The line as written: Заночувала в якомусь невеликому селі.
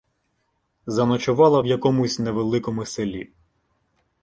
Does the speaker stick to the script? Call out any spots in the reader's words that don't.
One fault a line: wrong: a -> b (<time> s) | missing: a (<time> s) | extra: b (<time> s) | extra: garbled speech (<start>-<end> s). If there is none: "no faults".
no faults